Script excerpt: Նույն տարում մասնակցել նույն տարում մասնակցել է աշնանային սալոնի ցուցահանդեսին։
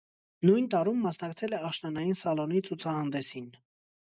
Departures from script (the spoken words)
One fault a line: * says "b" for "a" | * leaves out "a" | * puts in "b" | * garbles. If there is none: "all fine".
* leaves out "նույն տարում մասնակցել"